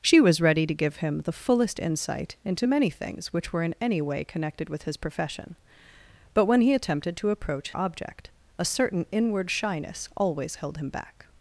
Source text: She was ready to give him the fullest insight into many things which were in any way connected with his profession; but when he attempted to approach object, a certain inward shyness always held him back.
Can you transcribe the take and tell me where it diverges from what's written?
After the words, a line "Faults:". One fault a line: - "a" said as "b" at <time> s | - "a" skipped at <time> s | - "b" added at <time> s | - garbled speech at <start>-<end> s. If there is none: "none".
She was ready to give him the fullest insight into many things which were in any way connected with his profession; but when he attempted to approach object, a certain inward shyness always held him back.
Faults:
none